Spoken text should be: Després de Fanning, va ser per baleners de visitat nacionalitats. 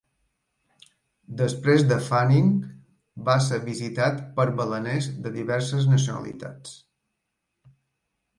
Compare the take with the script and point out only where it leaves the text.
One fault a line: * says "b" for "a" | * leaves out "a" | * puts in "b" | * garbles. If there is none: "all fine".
* puts in "visitat"
* says "diverses" for "visitat"